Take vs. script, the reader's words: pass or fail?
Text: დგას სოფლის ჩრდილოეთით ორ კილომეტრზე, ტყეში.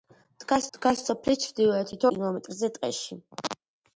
fail